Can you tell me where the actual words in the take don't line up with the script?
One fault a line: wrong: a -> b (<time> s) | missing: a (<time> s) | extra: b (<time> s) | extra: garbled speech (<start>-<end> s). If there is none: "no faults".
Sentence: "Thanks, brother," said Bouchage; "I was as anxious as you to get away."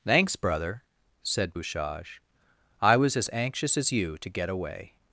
no faults